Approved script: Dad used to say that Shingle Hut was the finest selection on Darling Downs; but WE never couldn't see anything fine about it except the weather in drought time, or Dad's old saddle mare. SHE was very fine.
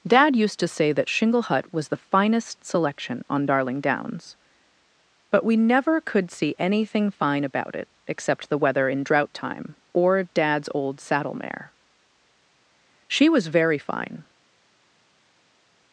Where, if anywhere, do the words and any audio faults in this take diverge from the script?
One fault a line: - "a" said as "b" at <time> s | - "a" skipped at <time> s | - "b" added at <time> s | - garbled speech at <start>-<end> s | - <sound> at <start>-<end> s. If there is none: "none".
- "couldn't" said as "could" at 6.0 s